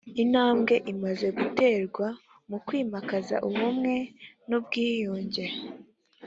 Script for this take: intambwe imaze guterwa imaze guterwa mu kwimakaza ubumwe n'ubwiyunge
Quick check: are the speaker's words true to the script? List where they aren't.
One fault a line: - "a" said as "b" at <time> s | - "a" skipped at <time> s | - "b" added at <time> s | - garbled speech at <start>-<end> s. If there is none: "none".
- "imaze guterwa" skipped at 2.1 s